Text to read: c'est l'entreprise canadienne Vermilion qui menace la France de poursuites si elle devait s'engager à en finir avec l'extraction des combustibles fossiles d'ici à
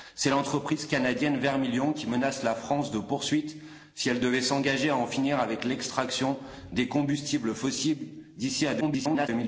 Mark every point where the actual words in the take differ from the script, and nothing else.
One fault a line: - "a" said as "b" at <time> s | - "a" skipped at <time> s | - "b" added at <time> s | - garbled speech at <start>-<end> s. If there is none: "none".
- garbled speech at 8.8-9.3 s